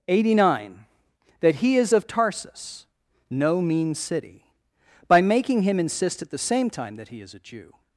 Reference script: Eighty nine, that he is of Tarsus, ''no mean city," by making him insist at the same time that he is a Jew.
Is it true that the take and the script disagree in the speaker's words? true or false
false